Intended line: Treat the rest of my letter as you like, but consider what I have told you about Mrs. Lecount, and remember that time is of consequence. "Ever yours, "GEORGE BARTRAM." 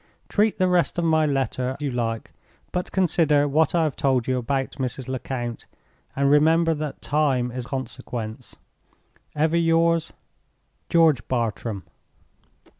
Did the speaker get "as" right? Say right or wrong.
wrong